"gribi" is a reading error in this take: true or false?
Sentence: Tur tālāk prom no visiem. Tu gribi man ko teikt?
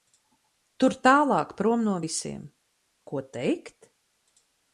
true